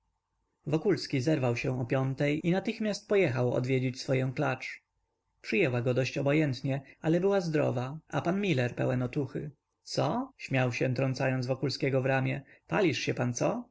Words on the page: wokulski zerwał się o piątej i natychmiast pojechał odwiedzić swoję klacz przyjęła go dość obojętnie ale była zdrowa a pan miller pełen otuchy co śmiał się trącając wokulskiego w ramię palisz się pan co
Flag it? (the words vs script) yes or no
no